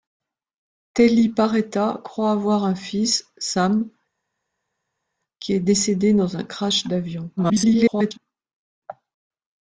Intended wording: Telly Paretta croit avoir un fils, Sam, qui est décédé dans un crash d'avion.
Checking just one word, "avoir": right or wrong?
right